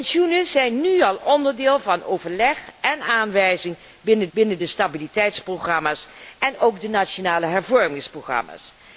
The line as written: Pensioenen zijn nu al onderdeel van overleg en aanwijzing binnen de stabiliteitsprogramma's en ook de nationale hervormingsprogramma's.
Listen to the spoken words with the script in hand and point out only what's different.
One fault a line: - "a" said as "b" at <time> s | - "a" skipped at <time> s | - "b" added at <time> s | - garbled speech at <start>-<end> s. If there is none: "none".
- "binnen" added at 4.3 s